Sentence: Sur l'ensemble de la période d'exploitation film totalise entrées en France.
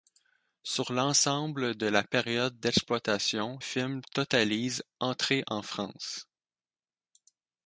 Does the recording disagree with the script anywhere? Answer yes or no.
no